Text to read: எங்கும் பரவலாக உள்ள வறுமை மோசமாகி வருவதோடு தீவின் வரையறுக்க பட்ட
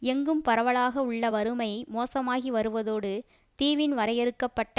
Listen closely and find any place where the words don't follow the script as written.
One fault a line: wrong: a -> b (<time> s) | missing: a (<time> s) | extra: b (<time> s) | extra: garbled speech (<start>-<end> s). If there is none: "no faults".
no faults